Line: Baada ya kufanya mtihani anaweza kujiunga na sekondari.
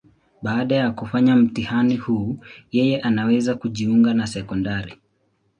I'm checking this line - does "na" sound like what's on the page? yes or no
yes